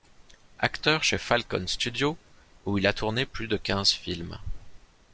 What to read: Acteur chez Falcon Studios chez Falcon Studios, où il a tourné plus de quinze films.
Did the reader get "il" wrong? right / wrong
right